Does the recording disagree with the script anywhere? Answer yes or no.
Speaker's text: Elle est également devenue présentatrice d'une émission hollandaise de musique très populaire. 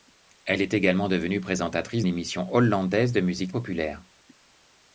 yes